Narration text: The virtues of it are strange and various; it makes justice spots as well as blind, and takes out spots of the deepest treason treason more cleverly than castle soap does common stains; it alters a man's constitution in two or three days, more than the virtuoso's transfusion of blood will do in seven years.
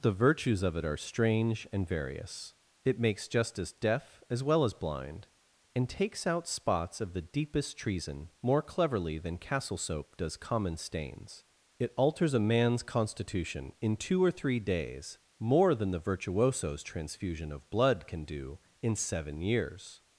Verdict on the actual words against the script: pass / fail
fail